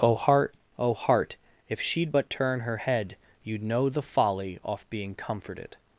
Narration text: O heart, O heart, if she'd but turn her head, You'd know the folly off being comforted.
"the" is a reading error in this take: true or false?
false